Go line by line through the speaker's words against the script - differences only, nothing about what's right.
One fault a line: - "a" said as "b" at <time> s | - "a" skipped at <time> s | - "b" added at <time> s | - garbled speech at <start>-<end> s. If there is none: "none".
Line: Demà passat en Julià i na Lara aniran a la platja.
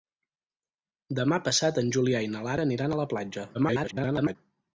- garbled speech at 3.5-4.4 s